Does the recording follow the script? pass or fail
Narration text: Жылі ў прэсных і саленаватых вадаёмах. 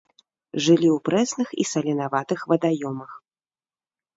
pass